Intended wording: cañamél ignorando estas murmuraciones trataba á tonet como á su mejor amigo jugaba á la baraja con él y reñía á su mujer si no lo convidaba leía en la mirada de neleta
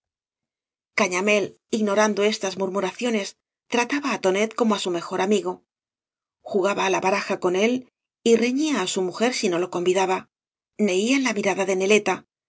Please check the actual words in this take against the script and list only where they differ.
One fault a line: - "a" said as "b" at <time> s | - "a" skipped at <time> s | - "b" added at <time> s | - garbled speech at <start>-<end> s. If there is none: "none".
none